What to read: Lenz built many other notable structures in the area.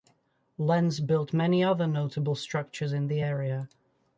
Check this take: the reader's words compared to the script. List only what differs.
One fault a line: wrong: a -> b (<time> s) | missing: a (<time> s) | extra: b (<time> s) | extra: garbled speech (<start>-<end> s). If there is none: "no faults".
no faults